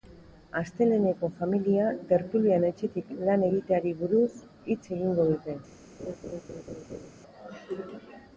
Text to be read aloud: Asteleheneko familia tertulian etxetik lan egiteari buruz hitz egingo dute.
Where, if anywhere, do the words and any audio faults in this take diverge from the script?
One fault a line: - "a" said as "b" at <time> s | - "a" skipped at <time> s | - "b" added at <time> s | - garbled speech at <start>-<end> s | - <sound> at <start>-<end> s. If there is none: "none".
- laugh at 6.0-7.1 s